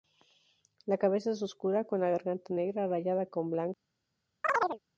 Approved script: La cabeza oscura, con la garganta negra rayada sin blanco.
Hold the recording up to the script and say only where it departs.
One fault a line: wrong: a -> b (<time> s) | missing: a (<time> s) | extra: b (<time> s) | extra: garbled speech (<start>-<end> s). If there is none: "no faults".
extra: es (1.3 s)
wrong: sin -> con (3.3 s)